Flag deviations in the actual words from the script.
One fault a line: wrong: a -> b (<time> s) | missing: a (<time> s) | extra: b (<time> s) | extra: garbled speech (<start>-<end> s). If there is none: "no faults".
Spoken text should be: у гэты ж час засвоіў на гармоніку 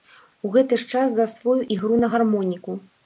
extra: ігру (1.8 s)